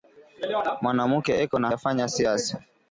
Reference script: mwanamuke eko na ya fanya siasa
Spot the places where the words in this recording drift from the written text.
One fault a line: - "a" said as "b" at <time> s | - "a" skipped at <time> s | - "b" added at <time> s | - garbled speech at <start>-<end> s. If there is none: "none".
none